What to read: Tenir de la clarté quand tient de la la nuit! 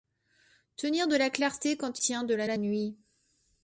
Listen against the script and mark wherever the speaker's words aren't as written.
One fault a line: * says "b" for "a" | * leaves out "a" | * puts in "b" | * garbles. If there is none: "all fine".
all fine